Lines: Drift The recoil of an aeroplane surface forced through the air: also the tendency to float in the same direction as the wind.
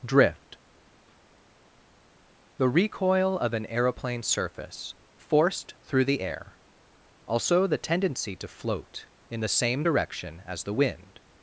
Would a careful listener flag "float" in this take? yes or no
no